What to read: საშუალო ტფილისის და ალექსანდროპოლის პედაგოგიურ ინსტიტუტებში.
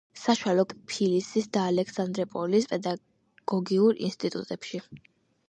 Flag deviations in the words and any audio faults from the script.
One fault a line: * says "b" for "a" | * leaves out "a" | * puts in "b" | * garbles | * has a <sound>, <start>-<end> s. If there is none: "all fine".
all fine